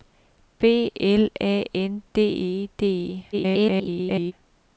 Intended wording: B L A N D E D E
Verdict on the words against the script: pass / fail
fail